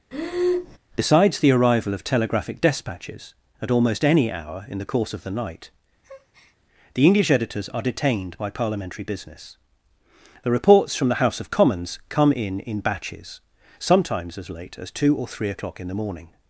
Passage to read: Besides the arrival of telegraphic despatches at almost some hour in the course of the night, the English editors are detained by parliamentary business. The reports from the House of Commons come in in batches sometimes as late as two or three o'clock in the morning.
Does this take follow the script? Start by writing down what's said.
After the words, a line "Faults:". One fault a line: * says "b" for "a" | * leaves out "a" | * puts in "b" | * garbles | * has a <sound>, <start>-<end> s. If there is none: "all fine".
Besides the arrival of telegraphic despatches at almost any hour in the course of the night, the English editors are detained by parliamentary business. The reports from the House of Commons come in in batches sometimes as late as two or three o'clock in the morning.
Faults:
* has a breath, 0.1-0.8 s
* says "any" for "some"
* has a breath, 6.0-6.6 s